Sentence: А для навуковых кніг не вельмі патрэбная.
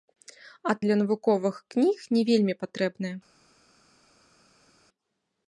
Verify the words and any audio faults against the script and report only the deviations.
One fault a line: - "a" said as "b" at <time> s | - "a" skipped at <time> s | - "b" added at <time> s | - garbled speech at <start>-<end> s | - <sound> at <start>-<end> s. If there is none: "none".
none